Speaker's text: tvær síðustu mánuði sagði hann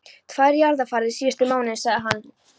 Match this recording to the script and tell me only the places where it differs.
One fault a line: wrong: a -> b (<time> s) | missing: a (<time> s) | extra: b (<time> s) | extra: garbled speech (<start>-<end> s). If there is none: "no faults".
extra: jarðarfarir (0.6 s)